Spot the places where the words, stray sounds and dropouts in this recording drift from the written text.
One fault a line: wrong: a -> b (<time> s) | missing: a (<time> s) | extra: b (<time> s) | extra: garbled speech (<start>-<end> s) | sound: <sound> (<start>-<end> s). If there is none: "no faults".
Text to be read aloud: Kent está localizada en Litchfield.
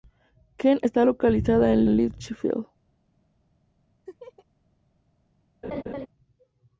extra: en (1.8 s)
sound: laugh (4.1-4.5 s)
sound: laugh (5.6-6.1 s)